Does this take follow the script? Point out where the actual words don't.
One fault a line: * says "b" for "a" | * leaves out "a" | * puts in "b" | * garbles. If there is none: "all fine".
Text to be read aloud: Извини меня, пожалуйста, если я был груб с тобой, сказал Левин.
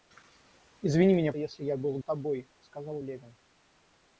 * leaves out "пожалуйста"
* leaves out "груб"